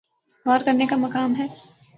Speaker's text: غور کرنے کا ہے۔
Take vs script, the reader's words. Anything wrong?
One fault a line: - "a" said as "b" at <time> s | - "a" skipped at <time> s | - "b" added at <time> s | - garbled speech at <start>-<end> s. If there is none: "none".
- "مقام" added at 1.0 s